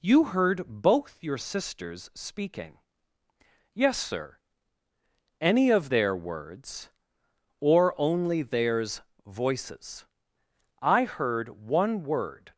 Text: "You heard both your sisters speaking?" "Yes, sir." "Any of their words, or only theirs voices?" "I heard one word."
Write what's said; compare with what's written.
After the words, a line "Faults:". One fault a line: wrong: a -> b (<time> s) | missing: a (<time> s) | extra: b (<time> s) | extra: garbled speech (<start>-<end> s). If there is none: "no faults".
"You heard both your sisters speaking?" "Yes, sir." "Any of their words, or only theirs voices?" "I heard one word."
Faults:
no faults